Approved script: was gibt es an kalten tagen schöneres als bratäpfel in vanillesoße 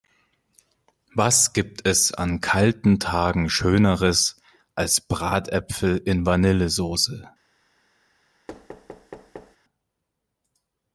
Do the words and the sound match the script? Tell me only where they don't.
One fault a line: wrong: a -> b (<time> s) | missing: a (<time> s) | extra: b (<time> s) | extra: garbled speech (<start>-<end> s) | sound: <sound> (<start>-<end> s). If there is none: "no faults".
sound: thud (8.5-9.6 s)